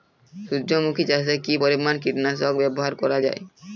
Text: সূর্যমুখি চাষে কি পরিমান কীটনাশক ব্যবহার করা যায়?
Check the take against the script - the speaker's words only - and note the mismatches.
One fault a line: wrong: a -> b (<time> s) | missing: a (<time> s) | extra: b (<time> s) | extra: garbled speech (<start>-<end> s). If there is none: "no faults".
no faults